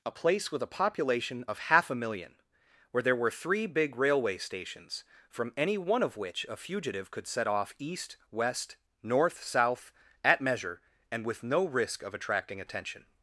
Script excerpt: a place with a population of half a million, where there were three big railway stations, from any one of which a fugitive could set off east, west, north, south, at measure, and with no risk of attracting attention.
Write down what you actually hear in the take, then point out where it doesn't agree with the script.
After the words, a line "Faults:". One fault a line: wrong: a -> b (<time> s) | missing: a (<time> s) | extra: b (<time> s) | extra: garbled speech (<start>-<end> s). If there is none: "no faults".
a place with a population of half a million, where there were three big railway stations, from any one of which a fugitive could set off east, west, north, south, at measure, and with no risk of attracting attention.
Faults:
no faults